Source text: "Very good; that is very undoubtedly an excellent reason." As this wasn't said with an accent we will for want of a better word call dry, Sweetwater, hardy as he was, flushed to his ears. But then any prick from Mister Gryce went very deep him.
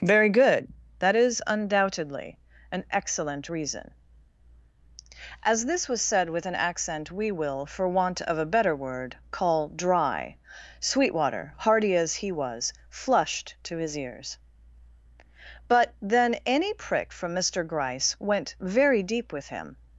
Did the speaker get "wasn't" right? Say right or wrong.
wrong